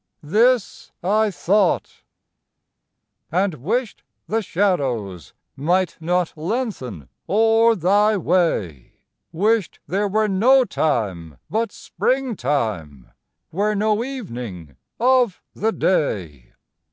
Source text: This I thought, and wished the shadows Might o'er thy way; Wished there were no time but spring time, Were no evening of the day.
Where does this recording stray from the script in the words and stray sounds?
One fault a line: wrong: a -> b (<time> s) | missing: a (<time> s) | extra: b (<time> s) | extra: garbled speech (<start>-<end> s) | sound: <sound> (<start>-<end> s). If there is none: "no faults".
extra: not lengthen (6.0 s)